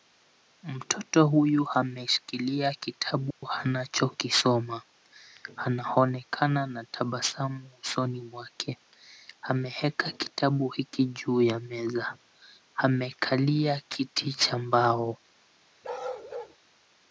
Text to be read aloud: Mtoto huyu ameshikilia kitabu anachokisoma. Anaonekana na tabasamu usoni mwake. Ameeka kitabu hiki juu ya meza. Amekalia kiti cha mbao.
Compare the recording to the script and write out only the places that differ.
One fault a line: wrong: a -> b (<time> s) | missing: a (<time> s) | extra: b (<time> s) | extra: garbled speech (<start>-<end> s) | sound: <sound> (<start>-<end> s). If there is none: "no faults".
sound: dropout (3.3-3.4 s)
sound: bark (15.8-16.6 s)